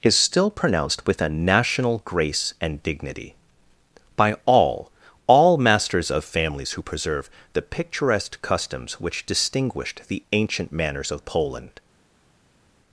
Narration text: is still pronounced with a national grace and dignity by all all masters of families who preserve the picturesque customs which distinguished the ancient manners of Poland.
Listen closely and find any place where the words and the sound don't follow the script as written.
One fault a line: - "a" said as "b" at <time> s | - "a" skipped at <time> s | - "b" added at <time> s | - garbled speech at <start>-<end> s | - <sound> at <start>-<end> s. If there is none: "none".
none